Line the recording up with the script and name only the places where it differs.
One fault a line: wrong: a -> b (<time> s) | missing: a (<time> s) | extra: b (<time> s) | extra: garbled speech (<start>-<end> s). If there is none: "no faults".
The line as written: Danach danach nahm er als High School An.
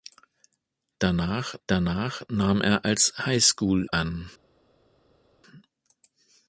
no faults